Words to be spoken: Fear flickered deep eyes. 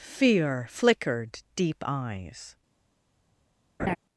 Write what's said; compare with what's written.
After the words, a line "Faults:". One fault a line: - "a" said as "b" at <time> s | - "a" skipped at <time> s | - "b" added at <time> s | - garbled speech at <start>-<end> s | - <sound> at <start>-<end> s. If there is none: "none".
Fear flickered deep eyes.
Faults:
- laugh at 3.8-4.0 s